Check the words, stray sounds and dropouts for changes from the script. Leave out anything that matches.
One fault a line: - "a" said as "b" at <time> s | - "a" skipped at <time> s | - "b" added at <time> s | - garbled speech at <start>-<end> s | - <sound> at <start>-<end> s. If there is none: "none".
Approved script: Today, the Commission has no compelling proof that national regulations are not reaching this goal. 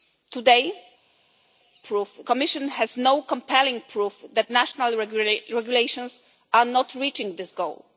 - "the" said as "proof" at 1.8 s